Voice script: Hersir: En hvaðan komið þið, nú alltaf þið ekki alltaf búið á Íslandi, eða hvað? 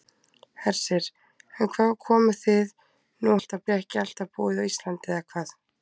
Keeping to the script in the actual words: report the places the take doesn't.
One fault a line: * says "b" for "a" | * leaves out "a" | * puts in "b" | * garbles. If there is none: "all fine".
all fine